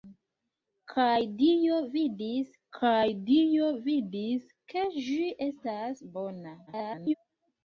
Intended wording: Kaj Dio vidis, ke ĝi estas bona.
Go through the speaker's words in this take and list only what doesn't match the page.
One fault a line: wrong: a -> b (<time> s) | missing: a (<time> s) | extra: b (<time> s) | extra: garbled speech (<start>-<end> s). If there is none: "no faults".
extra: kaj Dio vidis (2.8 s)
extra: garbled speech (6.7-7.1 s)